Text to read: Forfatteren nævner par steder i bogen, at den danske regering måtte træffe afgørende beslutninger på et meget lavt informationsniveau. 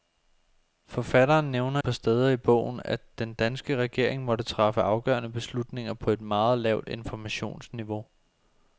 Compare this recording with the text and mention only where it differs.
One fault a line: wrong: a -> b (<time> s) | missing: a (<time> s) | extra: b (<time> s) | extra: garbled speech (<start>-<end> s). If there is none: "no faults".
no faults